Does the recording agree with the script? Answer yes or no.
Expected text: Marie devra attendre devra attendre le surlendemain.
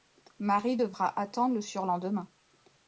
no